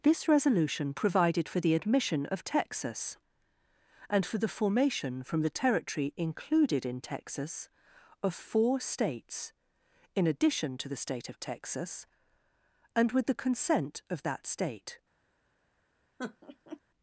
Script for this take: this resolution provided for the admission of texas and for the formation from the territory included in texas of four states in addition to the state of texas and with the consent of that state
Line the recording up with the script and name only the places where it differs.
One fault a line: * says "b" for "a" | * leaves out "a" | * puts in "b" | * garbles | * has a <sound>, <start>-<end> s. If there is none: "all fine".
* has a laugh, 16.2-16.8 s